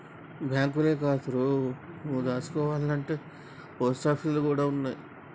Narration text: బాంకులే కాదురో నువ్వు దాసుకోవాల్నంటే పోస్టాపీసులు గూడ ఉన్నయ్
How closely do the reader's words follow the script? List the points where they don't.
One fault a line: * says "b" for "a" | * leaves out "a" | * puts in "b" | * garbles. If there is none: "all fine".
all fine